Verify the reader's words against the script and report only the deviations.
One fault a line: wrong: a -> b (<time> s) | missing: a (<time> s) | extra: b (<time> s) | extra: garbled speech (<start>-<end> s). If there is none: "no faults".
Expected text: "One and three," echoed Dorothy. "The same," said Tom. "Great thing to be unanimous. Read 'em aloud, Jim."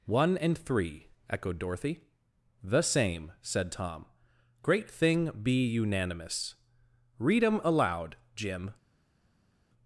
missing: to (5.3 s)